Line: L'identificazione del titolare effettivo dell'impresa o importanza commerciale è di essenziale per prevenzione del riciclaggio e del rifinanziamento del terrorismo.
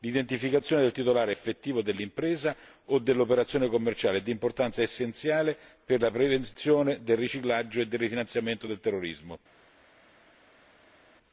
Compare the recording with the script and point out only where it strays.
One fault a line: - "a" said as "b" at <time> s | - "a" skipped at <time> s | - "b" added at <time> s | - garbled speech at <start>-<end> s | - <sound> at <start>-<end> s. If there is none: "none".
- "importanza" said as "dell'operazione" at 3.0 s
- "importanza" added at 4.3 s
- "la" added at 6.0 s